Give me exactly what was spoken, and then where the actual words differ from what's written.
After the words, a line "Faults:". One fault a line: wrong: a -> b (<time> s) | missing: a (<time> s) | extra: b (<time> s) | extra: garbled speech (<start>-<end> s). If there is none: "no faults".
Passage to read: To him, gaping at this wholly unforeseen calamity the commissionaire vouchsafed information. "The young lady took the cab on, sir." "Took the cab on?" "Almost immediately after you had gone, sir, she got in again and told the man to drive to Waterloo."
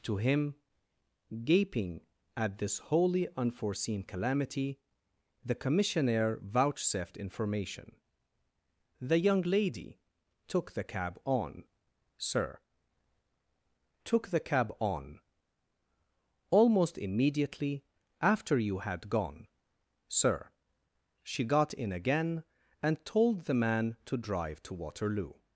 To him, gaping at this wholly unforeseen calamity the commissionaire vouchsafed information. "The young lady took the cab on, sir." "Took the cab on?" "Almost immediately after you had gone, sir, she got in again and told the man to drive to Waterloo."
Faults:
no faults